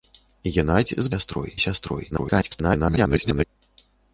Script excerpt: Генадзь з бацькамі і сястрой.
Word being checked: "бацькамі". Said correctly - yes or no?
no